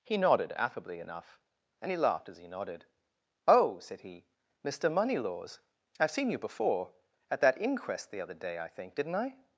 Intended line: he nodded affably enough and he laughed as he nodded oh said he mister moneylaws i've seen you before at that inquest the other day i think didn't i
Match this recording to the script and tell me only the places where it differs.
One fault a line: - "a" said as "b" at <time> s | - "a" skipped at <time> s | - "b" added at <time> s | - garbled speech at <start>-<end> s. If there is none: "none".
none